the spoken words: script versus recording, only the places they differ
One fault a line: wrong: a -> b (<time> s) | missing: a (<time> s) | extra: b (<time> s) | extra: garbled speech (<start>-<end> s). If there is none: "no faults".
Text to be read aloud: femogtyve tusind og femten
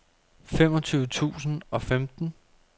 no faults